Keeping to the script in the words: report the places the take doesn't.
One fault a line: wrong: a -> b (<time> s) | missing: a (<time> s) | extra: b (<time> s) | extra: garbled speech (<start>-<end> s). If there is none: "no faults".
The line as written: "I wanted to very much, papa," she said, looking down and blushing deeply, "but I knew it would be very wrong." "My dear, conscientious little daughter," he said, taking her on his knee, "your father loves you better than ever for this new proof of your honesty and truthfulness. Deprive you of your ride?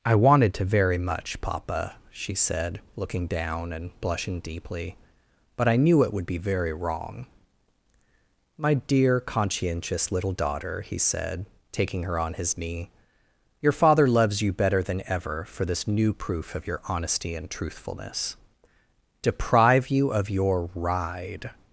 no faults